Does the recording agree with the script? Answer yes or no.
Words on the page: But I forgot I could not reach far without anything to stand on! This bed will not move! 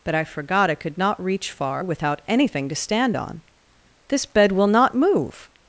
yes